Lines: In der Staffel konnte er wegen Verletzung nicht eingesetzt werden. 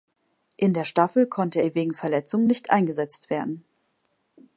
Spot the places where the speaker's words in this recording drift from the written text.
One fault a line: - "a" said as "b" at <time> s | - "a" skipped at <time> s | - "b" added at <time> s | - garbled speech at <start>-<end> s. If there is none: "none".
none